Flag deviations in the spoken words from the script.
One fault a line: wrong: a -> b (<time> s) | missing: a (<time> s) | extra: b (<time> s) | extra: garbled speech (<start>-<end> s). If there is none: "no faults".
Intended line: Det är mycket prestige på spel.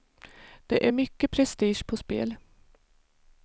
no faults